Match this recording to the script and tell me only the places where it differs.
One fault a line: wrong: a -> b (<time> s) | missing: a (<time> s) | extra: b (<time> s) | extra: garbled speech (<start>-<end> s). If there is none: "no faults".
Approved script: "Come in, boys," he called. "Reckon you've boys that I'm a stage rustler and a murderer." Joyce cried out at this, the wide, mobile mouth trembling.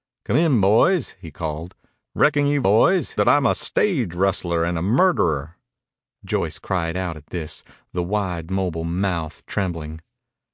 no faults